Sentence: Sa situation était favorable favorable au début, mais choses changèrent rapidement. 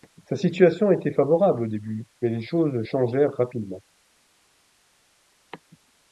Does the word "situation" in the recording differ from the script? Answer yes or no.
no